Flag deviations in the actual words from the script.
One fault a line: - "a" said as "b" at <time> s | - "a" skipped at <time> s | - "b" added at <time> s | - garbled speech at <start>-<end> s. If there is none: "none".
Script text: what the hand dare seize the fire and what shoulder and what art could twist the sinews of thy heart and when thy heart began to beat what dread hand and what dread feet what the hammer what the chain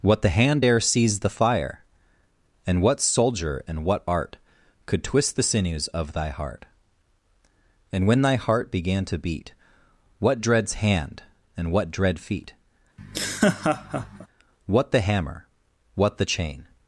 - "shoulder" said as "soldier" at 3.0 s
- "dread" said as "dreads" at 10.4 s